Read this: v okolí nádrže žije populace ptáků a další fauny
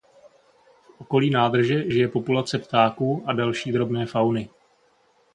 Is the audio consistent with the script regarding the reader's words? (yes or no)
no